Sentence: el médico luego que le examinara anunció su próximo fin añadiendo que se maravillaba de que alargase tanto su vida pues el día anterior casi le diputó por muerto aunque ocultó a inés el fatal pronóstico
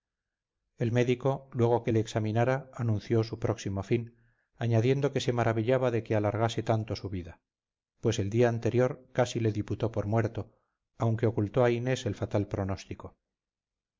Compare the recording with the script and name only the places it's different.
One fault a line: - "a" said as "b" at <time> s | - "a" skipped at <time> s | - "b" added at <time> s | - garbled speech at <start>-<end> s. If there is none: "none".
none